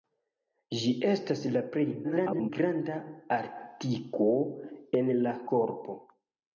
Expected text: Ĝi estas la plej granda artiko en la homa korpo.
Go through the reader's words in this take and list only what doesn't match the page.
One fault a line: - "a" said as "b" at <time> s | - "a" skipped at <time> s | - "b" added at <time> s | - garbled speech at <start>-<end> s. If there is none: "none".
- garbled speech at 2.0-2.5 s
- "homa" skipped at 5.3 s